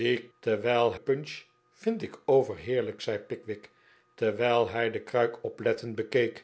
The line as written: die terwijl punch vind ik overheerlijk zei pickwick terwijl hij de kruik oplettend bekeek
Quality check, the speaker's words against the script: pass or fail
pass